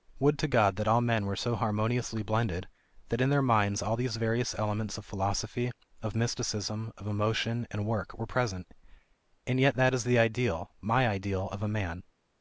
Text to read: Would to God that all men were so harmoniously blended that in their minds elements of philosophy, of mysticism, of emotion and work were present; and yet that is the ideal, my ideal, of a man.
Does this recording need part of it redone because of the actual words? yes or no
yes